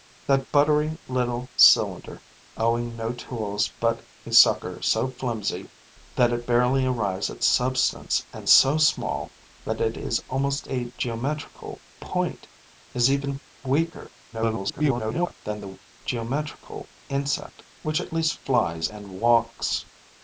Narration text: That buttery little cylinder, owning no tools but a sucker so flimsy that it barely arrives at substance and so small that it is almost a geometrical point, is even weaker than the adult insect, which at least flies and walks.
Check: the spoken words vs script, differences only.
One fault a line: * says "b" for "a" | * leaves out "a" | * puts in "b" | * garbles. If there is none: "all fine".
* garbles
* says "geometrical" for "adult"